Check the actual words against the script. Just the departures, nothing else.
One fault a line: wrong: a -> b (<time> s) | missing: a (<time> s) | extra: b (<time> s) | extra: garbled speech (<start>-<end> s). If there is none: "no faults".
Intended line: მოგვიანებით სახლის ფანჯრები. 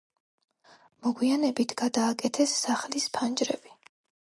extra: გადააკეთეს (1.9 s)